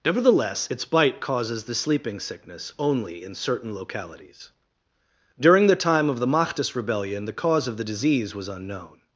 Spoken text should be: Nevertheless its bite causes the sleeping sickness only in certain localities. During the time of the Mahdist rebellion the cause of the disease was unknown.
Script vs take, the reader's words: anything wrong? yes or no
no